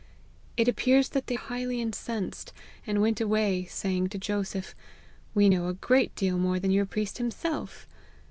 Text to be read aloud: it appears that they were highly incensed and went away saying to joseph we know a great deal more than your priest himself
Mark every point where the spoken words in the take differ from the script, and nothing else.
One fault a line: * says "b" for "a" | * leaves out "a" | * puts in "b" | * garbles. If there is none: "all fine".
* leaves out "were"